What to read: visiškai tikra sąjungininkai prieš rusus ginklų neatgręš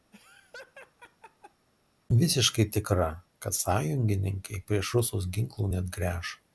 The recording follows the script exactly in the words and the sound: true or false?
false